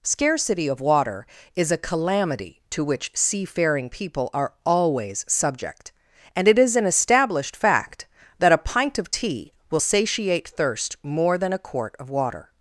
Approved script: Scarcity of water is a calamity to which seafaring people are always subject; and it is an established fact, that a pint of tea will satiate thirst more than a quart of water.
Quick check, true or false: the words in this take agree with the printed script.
true